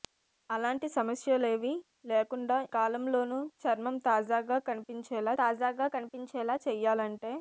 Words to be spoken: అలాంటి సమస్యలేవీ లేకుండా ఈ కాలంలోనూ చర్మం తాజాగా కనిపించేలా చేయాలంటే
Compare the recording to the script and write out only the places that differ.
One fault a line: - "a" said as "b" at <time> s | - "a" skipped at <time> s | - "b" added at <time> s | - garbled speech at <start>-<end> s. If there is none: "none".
- "ఈ" skipped at 2.6 s
- "తాజాగా కనిపించేలా" added at 5.4 s